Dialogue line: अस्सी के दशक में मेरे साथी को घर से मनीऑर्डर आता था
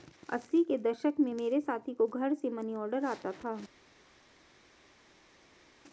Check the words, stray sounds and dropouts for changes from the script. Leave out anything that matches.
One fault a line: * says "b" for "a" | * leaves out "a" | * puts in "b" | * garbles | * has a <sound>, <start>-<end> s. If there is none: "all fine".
all fine